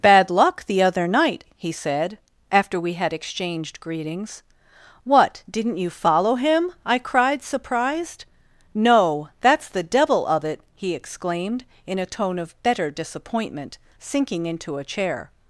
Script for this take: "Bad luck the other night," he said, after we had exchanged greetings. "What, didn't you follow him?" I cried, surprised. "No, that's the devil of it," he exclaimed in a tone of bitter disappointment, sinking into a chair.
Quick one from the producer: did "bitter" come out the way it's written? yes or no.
no